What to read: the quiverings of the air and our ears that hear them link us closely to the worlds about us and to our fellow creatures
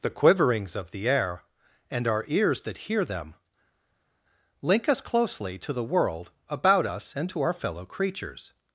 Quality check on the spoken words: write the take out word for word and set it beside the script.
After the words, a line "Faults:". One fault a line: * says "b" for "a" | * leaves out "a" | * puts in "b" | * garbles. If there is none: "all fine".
the quiverings of the air and our ears that hear them link us closely to the world about us and to our fellow creatures
Faults:
* says "world" for "worlds"